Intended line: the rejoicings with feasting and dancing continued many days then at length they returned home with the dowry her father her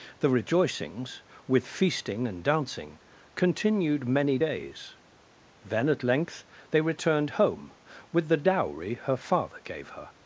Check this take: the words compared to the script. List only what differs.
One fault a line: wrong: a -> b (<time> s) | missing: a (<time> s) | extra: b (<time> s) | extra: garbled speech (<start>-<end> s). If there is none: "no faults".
extra: gave (9.6 s)